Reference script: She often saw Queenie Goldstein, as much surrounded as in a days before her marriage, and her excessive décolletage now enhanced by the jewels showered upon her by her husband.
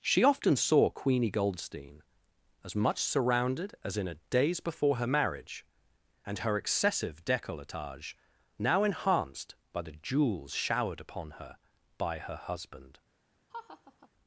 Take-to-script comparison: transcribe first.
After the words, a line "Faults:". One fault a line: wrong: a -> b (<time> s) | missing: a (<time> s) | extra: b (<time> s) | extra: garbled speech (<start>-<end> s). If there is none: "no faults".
She often saw Queenie Goldstein, as much surrounded as in a days before her marriage, and her excessive décolletage now enhanced by the jewels showered upon her by her husband.
Faults:
no faults